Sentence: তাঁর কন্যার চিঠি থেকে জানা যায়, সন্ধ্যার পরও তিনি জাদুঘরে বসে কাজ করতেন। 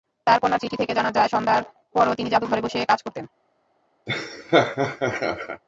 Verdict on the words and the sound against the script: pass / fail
fail